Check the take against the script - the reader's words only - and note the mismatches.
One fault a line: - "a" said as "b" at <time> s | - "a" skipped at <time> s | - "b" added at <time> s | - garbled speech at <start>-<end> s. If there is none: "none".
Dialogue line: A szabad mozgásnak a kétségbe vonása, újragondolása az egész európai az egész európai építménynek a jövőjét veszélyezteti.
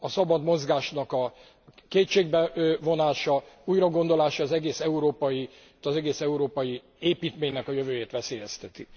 none